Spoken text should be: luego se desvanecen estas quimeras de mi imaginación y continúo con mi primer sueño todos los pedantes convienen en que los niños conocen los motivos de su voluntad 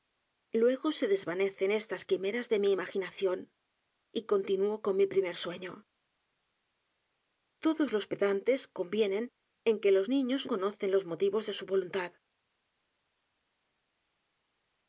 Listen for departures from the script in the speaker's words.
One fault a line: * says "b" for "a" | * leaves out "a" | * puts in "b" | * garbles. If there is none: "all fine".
all fine